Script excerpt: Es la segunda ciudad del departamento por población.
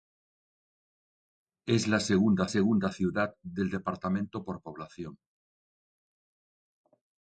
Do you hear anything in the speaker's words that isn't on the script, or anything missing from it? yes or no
yes